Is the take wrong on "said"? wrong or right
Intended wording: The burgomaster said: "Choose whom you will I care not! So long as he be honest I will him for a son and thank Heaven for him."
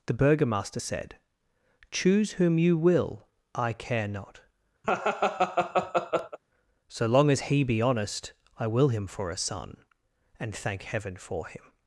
right